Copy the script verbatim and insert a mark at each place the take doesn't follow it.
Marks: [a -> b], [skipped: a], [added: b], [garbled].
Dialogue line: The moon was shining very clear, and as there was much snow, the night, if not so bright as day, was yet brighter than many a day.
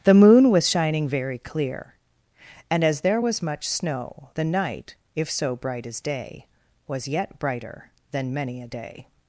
The moon was shining very clear, and as there was much snow, the night, if [skipped: not] so bright as day, was yet brighter than many a day.